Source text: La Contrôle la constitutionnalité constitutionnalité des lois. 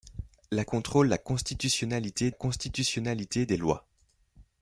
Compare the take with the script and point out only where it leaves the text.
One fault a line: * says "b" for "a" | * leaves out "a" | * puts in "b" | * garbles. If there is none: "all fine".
all fine